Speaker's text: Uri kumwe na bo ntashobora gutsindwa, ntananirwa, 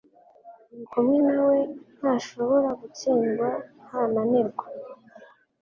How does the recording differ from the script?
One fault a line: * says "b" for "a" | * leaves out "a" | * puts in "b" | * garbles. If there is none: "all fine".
* says "we" for "bo"